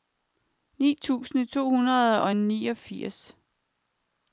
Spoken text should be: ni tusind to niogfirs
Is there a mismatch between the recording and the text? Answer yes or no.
yes